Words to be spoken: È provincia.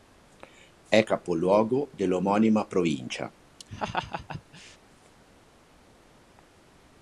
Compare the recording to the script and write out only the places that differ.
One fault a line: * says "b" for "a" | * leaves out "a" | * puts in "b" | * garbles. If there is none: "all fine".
* puts in "capoluogo dell'omonima"